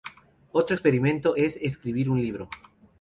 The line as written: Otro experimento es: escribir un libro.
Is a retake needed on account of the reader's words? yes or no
no